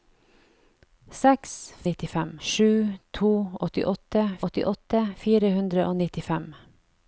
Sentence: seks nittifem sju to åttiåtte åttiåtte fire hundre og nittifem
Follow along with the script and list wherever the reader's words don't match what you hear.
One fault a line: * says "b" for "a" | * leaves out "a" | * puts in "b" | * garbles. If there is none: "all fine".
all fine